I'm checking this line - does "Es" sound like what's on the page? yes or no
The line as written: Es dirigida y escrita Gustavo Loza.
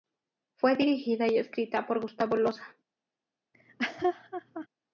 no